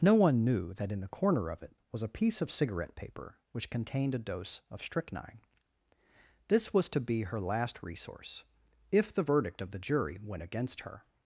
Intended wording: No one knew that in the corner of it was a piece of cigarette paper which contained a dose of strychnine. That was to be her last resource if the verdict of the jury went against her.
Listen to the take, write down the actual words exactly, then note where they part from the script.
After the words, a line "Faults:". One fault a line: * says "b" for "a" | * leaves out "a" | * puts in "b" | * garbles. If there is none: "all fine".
No one knew that in the corner of it was a piece of cigarette paper which contained a dose of strychnine. This was to be her last resource if the verdict of the jury went against her.
Faults:
* says "This" for "That"